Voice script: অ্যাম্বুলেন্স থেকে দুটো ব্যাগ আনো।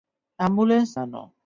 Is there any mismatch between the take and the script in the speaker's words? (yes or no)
yes